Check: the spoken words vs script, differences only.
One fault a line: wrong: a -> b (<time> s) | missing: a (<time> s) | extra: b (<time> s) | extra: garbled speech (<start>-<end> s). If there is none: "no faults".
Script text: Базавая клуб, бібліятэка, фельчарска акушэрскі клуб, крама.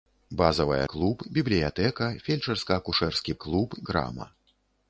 no faults